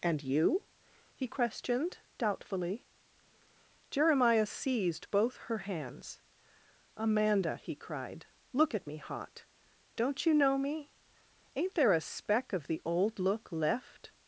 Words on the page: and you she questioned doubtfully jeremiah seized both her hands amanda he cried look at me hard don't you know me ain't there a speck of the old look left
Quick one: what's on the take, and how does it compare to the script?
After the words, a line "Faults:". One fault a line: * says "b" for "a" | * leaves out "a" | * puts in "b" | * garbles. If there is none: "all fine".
and you he questioned doubtfully jeremiah seized both her hands amanda he cried look at me hot don't you know me ain't there a speck of the old look left
Faults:
* says "he" for "she"
* says "hot" for "hard"